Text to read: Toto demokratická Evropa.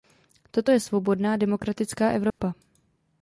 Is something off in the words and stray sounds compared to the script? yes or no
yes